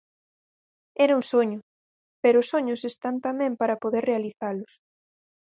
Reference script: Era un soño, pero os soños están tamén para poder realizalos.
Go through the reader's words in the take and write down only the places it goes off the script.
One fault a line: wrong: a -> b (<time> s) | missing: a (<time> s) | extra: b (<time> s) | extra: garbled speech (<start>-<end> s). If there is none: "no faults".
no faults